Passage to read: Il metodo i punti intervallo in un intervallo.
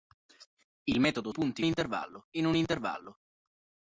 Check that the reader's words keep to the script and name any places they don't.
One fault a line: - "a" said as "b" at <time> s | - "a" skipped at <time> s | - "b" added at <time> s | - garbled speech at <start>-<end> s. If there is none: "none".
none